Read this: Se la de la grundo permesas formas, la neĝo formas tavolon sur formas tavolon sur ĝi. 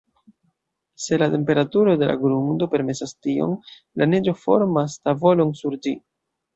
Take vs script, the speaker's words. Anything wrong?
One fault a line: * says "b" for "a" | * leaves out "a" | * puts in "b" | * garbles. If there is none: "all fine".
* puts in "temperaturo"
* says "tion" for "formas"
* leaves out "formas tavolon sur"